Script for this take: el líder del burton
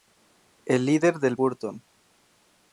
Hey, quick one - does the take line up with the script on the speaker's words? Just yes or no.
yes